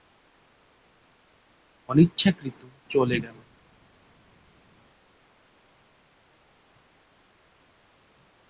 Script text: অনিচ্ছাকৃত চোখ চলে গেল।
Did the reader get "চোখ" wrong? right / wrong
wrong